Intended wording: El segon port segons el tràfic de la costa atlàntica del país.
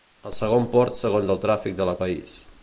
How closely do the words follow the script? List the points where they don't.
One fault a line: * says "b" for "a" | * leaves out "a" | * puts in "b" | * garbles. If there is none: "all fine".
* leaves out "costa atlàntica del"